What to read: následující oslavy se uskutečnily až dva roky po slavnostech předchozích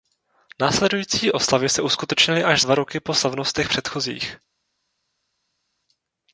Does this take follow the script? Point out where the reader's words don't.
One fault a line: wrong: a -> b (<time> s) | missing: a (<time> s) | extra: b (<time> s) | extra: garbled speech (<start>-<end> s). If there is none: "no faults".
no faults